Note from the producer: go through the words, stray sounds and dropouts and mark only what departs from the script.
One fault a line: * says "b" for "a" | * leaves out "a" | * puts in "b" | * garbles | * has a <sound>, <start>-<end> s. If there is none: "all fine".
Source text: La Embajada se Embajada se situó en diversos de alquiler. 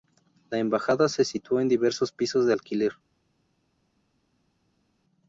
* leaves out "Embajada se"
* puts in "pisos"